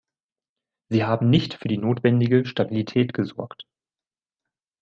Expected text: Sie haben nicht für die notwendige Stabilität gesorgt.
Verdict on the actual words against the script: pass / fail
pass